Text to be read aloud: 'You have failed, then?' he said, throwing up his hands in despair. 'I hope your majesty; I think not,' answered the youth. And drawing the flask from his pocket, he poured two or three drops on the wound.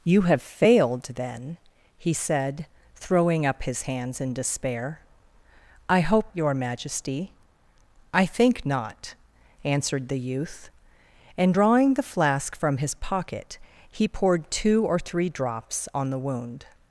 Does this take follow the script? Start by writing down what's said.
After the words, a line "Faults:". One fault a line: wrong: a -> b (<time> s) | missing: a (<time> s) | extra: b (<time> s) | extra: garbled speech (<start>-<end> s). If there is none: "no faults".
'You have failed, then?' he said, throwing up his hands in despair. 'I hope your majesty; I think not,' answered the youth. And drawing the flask from his pocket, he poured two or three drops on the wound.
Faults:
no faults